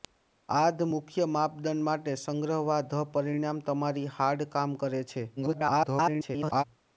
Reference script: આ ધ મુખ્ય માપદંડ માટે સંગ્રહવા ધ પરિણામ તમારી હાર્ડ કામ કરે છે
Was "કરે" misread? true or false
false